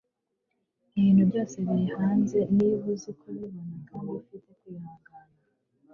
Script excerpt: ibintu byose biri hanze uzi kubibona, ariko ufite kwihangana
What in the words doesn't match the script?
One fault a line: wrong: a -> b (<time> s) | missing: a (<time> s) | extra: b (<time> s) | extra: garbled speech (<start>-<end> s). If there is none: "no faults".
extra: niba (2.6 s)
wrong: ariko -> kandi (3.9 s)